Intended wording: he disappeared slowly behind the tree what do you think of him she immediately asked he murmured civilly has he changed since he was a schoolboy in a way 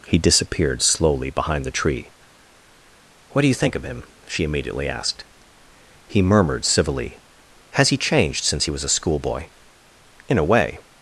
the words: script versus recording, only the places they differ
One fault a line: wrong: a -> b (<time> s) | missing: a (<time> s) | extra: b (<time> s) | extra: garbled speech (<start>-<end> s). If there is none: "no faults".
no faults